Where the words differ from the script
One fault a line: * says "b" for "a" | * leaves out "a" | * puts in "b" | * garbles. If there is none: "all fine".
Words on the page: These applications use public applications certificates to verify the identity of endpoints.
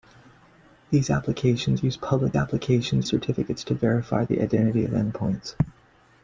all fine